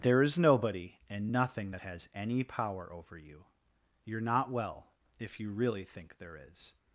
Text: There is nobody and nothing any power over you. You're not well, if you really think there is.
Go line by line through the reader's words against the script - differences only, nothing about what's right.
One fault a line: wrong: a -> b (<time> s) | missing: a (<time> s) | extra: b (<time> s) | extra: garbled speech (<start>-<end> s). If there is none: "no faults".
extra: that has (1.7 s)